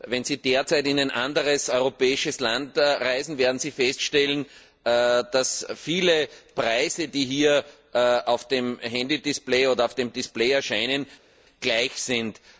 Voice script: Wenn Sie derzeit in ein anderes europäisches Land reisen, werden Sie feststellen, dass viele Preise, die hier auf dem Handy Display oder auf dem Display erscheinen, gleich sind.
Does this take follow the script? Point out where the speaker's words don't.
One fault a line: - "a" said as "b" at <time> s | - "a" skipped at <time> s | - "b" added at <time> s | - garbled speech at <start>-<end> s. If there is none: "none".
none